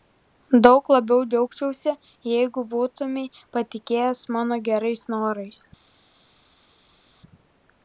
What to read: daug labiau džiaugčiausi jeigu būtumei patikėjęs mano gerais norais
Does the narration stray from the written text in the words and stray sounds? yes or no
no